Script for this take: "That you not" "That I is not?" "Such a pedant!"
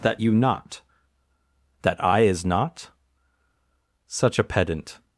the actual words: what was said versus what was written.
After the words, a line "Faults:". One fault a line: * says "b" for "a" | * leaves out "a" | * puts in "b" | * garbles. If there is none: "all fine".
"That you not" "That I is not?" "Such a pedant!"
Faults:
all fine